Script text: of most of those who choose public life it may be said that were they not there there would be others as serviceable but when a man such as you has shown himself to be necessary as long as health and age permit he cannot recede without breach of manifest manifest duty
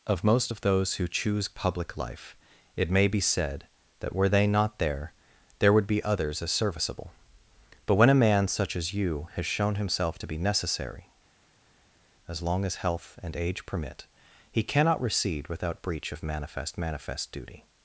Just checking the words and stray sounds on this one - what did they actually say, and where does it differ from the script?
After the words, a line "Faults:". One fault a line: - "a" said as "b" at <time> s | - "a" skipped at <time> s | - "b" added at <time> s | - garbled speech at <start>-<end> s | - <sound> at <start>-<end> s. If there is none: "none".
of most of those who choose public life it may be said that were they not there there would be others as serviceable but when a man such as you has shown himself to be necessary as long as health and age permit he cannot recede without breach of manifest manifest duty
Faults:
none